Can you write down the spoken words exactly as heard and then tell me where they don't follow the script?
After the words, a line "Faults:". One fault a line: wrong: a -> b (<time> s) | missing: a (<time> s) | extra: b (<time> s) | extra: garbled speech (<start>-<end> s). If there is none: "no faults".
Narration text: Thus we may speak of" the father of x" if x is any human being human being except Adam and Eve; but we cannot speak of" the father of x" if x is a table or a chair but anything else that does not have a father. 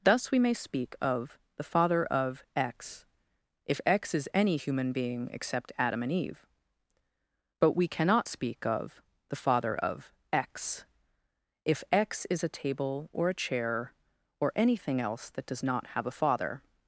Thus we may speak of" the father of x" if x is any human being except Adam and Eve; but we cannot speak of" the father of x" if x is a table or a chair or anything else that does not have a father.
Faults:
missing: human being (5.3 s)
wrong: but -> or (14.4 s)